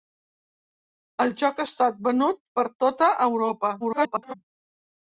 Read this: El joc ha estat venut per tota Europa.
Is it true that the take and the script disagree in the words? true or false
true